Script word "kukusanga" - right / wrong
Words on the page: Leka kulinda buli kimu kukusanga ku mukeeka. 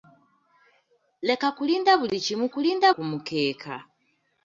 wrong